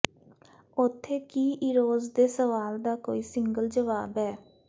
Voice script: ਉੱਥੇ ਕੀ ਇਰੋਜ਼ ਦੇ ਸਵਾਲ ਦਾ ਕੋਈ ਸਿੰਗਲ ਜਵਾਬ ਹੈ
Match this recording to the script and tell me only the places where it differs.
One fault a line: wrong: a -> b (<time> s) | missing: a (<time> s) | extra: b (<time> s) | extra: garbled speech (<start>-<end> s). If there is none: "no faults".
no faults